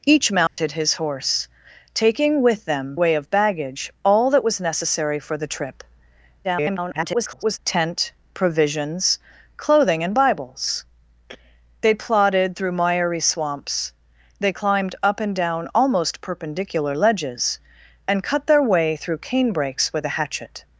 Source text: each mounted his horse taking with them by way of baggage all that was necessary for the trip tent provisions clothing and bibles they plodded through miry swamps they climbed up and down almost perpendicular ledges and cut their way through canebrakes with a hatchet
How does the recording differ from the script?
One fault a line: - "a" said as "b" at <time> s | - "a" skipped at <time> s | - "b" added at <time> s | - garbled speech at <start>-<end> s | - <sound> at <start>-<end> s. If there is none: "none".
- dropout at 0.5-0.6 s
- "by" skipped at 3.0 s
- garbled speech at 6.4-7.6 s